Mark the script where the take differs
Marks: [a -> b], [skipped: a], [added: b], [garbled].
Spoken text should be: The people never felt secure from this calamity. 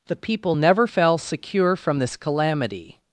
The people never [felt -> fell] secure from this calamity.